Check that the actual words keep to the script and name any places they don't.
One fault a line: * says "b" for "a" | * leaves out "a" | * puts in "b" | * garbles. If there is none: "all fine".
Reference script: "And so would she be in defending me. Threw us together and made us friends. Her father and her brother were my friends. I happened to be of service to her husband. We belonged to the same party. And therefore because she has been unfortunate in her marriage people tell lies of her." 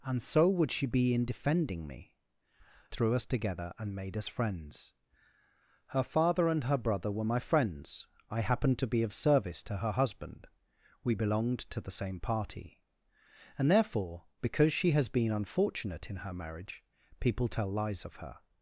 all fine